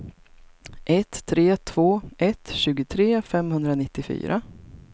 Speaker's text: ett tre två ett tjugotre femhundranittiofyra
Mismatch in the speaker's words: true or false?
false